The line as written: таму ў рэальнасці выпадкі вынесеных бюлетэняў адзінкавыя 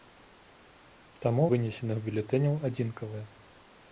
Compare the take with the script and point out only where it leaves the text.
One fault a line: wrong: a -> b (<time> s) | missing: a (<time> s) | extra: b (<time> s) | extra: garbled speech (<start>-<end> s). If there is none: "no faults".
missing: ў рэальнасці выпадкі (1.4 s)